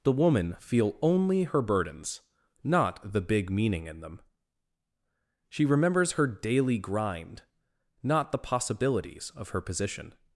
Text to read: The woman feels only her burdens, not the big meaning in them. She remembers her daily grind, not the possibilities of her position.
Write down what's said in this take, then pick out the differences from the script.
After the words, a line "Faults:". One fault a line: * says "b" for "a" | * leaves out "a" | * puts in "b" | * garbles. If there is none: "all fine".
The woman feel only her burdens, not the big meaning in them. She remembers her daily grind, not the possibilities of her position.
Faults:
* says "feel" for "feels"